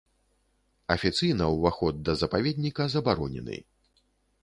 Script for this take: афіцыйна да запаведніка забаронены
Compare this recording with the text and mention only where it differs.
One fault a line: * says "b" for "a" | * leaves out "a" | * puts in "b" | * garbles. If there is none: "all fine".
* puts in "ўваход"